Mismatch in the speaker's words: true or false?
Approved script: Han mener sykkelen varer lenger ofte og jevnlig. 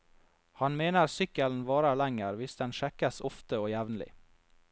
true